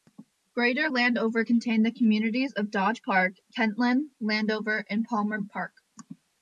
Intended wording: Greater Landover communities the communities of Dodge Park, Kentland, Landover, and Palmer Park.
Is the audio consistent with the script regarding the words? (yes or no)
no